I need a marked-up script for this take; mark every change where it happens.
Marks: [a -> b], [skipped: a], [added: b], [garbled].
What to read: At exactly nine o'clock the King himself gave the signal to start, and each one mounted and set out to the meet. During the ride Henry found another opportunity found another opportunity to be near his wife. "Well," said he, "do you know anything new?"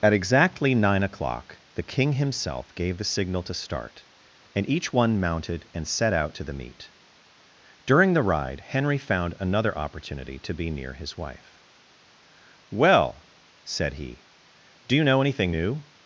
At exactly nine o'clock the King himself gave the signal to start, and each one mounted and set out to the meet. During the ride Henry found another opportunity [skipped: found another opportunity] to be near his wife. "Well," said he, "do you know anything new?"